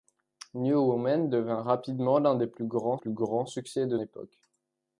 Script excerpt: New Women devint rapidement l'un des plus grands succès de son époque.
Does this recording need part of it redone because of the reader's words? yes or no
yes